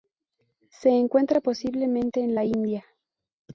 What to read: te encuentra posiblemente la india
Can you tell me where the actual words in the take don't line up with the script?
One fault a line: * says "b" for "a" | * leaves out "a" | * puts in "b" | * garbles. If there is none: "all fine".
* says "se" for "te"
* puts in "en"